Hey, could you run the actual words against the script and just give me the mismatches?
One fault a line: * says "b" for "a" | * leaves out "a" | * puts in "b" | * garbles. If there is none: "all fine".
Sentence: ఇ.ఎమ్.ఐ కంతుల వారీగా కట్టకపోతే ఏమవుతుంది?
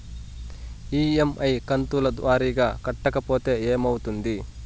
all fine